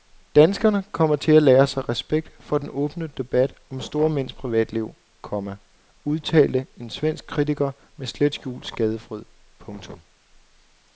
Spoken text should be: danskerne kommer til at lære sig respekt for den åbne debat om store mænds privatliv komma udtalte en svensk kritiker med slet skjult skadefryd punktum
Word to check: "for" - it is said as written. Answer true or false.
true